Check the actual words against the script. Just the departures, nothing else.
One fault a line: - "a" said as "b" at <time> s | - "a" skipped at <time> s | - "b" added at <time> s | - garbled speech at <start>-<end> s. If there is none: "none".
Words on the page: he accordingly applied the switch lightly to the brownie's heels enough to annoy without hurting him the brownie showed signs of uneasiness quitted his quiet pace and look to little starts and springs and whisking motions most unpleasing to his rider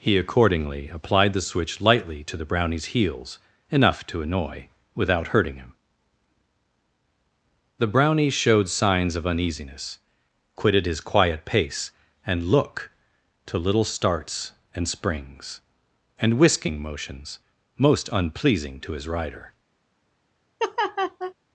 none